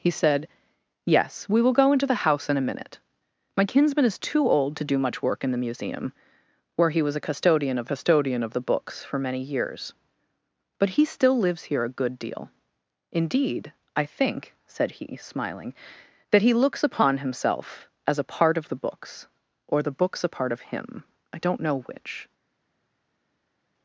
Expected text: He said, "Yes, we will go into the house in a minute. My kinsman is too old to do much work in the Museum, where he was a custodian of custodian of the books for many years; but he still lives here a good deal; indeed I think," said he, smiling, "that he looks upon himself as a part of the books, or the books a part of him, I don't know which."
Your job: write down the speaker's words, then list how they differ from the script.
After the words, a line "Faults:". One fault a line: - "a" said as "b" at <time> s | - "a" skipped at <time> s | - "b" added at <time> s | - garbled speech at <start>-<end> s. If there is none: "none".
He said, "Yes, we will go into the house in a minute. My kinsman is too old to do much work in the Museum, where he was a custodian of custodian of the books for many years; but he still lives here a good deal; indeed I think," said he, smiling, "that he looks upon himself as a part of the books, or the books a part of him, I don't know which."
Faults:
none